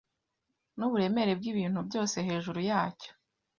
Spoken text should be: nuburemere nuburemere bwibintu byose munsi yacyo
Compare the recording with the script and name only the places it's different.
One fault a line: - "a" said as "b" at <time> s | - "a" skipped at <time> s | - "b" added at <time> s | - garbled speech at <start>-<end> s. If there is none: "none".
- "nuburemere" skipped at 1.3 s
- "munsi" said as "hejuru" at 2.3 s